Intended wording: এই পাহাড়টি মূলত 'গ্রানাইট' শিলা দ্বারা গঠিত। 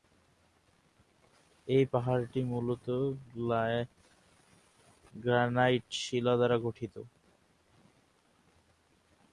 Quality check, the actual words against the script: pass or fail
pass